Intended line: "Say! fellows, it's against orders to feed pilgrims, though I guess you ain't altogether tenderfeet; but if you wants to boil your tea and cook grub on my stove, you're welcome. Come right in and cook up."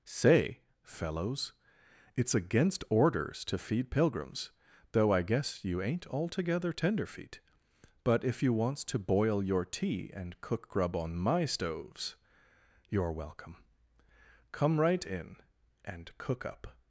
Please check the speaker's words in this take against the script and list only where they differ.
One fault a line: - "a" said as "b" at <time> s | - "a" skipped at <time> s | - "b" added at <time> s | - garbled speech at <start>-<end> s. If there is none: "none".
- "stove" said as "stoves" at 11.4 s